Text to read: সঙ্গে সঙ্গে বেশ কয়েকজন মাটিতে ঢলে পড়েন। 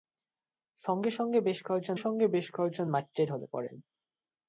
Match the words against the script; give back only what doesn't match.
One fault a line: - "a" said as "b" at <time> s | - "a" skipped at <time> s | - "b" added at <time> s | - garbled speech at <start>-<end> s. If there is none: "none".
- "সঙ্গে বেশ কয়েকজন" added at 1.9 s